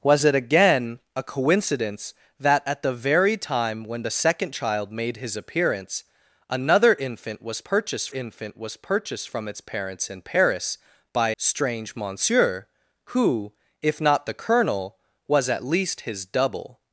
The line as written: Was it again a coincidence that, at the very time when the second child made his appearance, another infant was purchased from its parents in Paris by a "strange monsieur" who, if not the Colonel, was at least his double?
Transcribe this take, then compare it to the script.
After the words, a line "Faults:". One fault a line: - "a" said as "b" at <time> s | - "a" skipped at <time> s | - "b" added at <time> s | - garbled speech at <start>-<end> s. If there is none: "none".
Was it again a coincidence that, at the very time when the second child made his appearance, another infant was purchased infant was purchased from its parents in Paris by "strange monsieur" who, if not the Colonel, was at least his double?
Faults:
- "infant was purchased" added at 8.1 s
- "a" skipped at 11.3 s